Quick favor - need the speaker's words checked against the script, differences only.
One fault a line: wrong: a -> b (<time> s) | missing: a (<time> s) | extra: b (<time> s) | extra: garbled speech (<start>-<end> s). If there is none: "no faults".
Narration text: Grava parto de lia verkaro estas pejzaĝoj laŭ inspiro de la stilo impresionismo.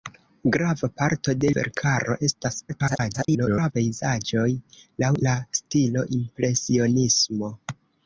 missing: lia (1.5 s)
extra: garbled speech (2.7-3.7 s)
missing: inspiro de (5.1 s)